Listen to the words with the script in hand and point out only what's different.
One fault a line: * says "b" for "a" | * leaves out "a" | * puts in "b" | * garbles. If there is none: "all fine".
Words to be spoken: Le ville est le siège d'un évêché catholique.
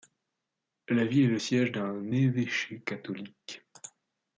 * says "La" for "Le"